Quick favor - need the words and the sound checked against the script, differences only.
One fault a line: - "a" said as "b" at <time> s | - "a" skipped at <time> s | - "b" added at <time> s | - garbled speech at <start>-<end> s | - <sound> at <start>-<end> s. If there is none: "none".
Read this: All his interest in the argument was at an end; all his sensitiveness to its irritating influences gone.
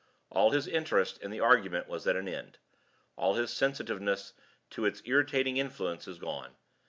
none